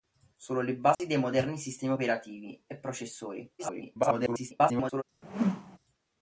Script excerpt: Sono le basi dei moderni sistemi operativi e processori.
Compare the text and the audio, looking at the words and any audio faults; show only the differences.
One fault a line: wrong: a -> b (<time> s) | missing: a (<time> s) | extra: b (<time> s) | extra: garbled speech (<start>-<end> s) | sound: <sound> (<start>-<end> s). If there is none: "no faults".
sound: dropout (0.9-1.0 s)
extra: garbled speech (3.6-5.0 s)
sound: whoosh (5.2-5.8 s)